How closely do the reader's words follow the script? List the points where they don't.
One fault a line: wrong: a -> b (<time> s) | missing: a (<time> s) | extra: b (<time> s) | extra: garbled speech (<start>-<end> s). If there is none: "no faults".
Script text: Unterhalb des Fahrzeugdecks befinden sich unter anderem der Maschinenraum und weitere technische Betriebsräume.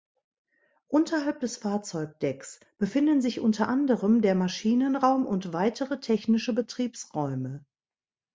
no faults